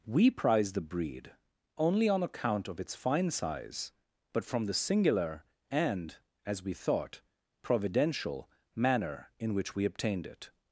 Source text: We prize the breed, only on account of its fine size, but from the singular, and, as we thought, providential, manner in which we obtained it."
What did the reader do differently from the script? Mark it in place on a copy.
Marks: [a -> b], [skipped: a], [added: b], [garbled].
We prize the breed, only on account of its fine size, but from the singular, and, as we thought, providential, manner in which we obtained it."